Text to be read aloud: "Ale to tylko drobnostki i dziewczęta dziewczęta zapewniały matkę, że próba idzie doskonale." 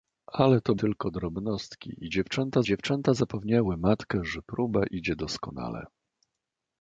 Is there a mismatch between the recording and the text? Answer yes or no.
no